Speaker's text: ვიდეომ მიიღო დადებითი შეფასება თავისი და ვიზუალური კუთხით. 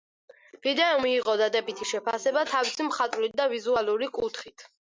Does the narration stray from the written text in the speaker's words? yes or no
yes